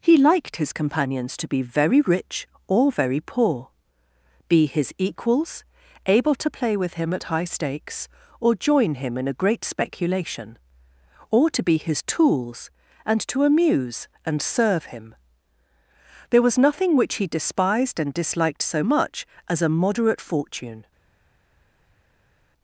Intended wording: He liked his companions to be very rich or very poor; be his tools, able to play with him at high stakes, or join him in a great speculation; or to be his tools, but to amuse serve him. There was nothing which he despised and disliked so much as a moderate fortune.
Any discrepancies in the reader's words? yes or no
yes